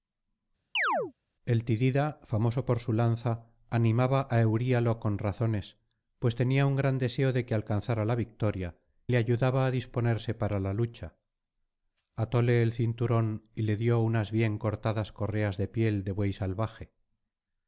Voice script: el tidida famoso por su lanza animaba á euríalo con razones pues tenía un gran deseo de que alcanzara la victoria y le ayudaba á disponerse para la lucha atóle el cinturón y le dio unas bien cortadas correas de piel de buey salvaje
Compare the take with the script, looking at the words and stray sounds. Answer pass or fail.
fail